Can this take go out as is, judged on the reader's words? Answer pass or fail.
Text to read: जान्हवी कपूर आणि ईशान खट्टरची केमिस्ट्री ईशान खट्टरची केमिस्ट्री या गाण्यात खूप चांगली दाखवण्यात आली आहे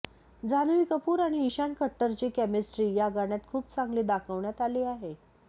fail